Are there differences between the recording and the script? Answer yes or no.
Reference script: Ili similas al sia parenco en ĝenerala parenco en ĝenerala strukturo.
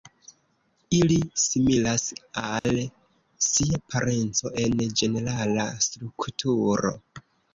yes